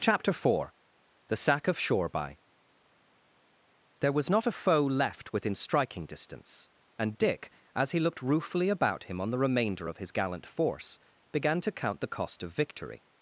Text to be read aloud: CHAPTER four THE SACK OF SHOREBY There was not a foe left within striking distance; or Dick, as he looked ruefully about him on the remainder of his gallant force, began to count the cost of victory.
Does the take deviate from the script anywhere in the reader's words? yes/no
yes